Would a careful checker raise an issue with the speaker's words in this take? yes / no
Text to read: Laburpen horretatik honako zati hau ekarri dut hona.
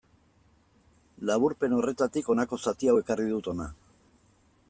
no